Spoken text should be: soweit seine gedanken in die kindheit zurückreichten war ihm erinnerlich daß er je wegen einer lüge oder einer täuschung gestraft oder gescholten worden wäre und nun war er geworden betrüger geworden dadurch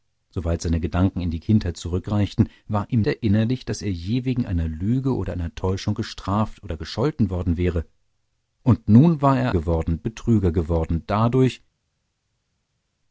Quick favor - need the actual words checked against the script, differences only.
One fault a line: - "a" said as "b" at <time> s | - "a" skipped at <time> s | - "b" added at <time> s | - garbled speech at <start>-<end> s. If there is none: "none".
none